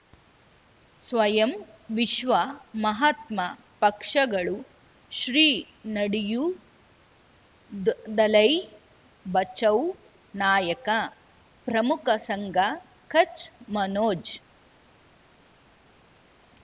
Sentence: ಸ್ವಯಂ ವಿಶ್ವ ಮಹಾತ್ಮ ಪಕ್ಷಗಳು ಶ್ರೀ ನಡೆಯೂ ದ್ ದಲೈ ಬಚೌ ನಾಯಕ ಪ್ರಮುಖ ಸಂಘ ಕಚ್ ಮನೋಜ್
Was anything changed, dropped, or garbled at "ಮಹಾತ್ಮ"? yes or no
no